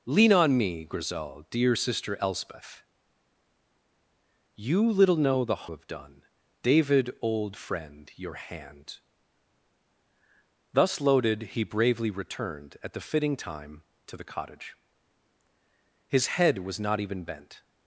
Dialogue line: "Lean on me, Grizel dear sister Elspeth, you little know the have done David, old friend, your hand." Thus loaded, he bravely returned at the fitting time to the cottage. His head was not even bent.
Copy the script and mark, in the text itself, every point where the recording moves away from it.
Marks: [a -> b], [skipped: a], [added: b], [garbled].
"Lean on me, Grizel dear sister Elspeth, you little know the have done David, old friend, your hand." Thus loaded, he bravely returned at the fitting time to the cottage. His head was not even bent.